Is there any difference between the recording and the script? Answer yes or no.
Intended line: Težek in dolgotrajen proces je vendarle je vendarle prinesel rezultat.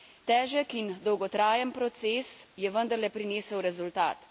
yes